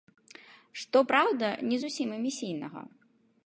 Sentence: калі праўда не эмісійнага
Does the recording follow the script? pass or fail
fail